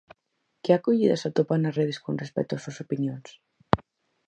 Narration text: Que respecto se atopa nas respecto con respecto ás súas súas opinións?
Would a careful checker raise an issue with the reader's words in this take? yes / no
yes